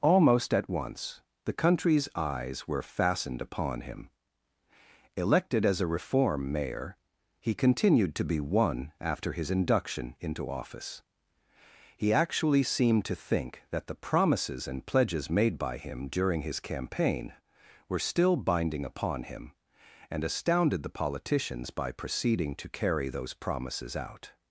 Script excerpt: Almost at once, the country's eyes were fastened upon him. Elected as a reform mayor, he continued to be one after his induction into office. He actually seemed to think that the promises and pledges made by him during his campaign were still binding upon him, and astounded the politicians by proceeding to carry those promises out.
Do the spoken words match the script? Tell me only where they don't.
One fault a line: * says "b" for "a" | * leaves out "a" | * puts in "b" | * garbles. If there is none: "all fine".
all fine